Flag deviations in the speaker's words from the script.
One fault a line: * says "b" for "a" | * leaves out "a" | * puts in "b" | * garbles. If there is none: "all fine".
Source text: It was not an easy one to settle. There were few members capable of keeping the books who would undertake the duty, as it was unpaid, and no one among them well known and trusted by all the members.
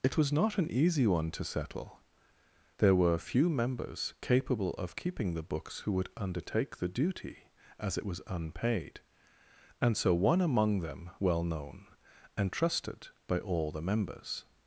* says "so" for "no"